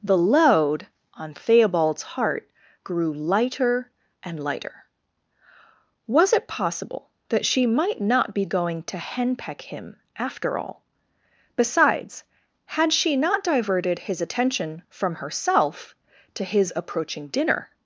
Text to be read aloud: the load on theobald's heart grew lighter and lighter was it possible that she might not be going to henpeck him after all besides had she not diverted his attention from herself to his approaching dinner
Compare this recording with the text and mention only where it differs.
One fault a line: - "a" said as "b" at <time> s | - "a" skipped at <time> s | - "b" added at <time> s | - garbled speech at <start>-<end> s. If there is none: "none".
none